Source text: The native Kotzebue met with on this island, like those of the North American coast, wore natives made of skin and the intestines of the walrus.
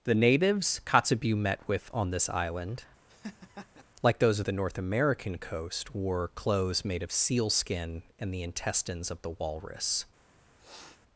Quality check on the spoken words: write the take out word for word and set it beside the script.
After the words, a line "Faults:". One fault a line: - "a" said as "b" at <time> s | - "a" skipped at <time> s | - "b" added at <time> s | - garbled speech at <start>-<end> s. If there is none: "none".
The natives Kotzebue met with on this island, like those of the North American coast, wore clothes made of seal skin and the intestines of the walrus.
Faults:
- "native" said as "natives" at 0.1 s
- "natives" said as "clothes" at 6.3 s
- "seal" added at 7.1 s